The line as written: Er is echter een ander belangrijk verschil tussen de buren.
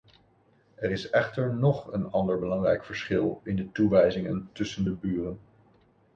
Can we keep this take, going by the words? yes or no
no